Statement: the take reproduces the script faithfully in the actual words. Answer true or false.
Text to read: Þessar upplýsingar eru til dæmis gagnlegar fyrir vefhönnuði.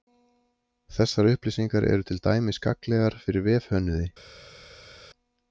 true